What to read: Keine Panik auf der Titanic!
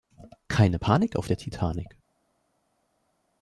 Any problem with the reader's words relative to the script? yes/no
no